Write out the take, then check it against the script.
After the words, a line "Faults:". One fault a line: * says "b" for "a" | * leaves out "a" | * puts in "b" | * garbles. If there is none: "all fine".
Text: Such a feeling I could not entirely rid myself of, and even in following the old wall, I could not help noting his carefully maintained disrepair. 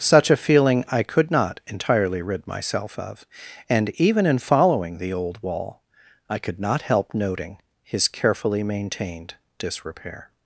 Such a feeling I could not entirely rid myself of, and even in following the old wall, I could not help noting his carefully maintained disrepair.
Faults:
all fine